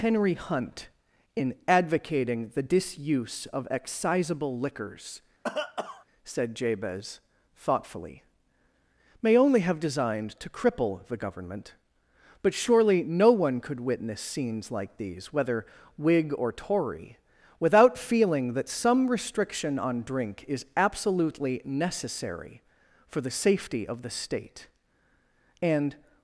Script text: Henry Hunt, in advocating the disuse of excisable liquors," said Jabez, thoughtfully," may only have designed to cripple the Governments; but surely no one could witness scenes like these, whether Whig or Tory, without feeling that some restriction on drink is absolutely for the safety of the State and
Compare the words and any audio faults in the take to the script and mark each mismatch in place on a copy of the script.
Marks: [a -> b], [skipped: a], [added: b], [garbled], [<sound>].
Henry Hunt, in advocating the disuse of excisable liquors," [cough] said Jabez, thoughtfully," may only have designed to cripple the [Governments; -> Government] but surely no one could witness scenes like these, whether Whig or Tory, without feeling that some restriction on drink is absolutely [added: necessary] for the safety of the State and